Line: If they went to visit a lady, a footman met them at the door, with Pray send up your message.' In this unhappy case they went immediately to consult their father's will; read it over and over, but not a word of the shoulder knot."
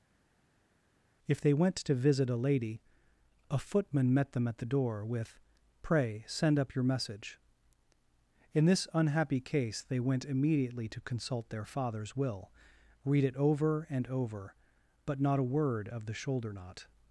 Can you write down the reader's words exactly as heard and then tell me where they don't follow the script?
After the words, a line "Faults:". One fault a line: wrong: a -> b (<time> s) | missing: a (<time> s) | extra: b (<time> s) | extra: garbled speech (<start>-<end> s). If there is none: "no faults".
If they went to visit a lady, a footman met them at the door, with Pray send up your message.' In this unhappy case they went immediately to consult their father's will; read it over and over, but not a word of the shoulder knot."
Faults:
no faults